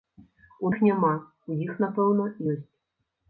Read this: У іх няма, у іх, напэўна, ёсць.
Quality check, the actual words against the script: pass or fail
pass